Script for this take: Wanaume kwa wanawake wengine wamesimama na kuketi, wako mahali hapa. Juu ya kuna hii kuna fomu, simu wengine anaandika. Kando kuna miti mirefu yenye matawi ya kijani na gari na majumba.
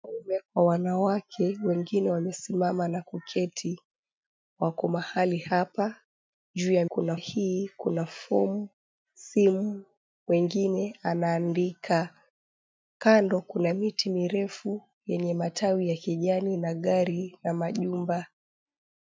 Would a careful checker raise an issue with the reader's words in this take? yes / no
no